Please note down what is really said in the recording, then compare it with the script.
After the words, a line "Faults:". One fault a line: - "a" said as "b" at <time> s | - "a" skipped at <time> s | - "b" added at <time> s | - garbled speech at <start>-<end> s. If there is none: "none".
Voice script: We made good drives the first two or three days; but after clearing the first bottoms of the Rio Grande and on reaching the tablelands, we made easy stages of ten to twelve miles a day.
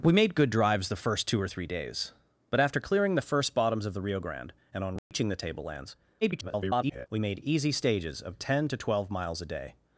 We made good drives the first two or three days; but after clearing the first bottoms of the Rio Grande and on reaching the tablelands, [garbled] we made easy stages of ten to twelve miles a day.
Faults:
- garbled speech at 6.2-7.1 s